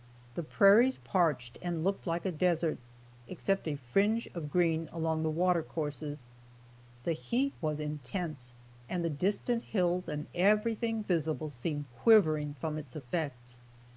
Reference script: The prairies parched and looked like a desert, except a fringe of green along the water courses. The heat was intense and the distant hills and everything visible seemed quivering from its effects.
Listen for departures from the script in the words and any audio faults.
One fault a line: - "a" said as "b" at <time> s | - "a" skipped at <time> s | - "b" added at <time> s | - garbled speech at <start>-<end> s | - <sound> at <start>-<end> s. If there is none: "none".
none